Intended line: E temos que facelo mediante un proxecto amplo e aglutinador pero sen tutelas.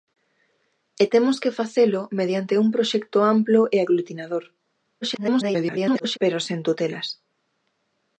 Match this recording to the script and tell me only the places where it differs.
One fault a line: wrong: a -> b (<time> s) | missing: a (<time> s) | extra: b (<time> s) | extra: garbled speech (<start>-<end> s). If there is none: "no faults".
extra: garbled speech (5.0-6.2 s)